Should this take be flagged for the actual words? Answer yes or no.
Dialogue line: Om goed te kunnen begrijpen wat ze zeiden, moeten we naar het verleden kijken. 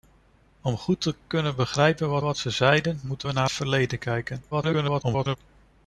yes